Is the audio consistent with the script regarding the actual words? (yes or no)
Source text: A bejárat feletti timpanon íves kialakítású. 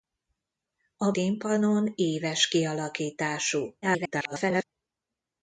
no